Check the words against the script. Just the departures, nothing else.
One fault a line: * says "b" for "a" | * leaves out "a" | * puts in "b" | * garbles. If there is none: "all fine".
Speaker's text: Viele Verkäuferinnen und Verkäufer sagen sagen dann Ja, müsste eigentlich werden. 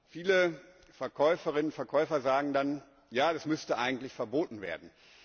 * leaves out "sagen"
* puts in "das"
* puts in "verboten"